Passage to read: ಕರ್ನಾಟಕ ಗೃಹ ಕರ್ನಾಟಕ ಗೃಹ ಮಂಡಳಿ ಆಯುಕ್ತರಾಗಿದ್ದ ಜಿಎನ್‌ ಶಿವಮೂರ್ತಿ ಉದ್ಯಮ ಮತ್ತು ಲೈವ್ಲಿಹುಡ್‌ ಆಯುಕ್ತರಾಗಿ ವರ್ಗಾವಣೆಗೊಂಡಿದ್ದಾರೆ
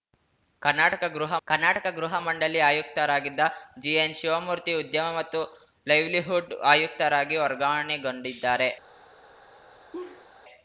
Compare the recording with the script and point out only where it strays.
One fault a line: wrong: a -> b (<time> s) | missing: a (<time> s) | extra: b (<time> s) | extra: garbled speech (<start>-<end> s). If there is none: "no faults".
no faults